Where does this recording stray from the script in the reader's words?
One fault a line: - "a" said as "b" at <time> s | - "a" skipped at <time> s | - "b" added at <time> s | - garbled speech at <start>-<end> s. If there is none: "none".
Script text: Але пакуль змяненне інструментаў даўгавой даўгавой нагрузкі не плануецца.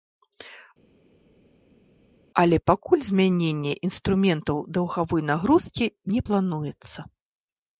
- "даўгавой" skipped at 5.2 s